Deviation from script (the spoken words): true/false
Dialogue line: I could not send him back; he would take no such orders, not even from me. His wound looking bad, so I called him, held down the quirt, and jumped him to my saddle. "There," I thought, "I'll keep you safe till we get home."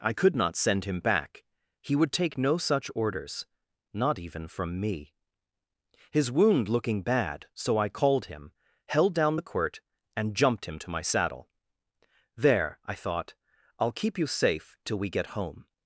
false